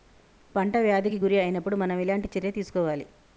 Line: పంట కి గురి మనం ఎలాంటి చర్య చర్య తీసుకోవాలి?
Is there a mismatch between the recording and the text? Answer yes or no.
yes